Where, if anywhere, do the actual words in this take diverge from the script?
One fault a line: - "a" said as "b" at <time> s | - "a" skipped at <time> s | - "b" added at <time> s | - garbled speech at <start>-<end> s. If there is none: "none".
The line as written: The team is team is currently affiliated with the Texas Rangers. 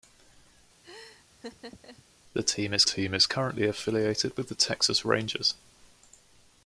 none